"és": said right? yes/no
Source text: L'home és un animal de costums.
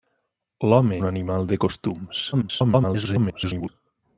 no